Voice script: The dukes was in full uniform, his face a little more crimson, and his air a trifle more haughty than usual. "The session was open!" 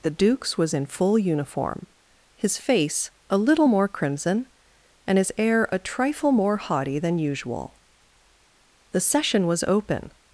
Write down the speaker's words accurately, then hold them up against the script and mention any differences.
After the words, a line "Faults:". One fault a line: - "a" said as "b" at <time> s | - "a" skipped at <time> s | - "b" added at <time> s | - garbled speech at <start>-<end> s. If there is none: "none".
The dukes was in full uniform, his face a little more crimson, and his air a trifle more haughty than usual. "The session was open!"
Faults:
none